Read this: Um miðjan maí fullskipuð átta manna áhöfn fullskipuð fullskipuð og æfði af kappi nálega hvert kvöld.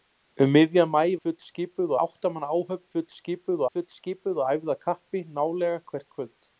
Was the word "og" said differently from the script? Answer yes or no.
no